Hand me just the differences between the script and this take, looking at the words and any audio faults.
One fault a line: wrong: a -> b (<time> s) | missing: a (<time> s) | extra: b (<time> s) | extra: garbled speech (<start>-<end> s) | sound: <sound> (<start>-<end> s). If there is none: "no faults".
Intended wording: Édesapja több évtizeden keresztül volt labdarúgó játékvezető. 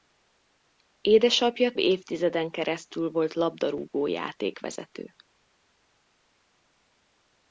missing: több (1.7 s)